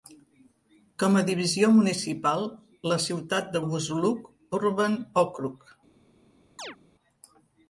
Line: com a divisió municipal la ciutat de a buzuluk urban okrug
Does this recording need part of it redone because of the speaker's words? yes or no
no